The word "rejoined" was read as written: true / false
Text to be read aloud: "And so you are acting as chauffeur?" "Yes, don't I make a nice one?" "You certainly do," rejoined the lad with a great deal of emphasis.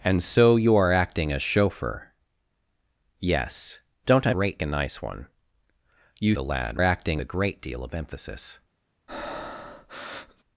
false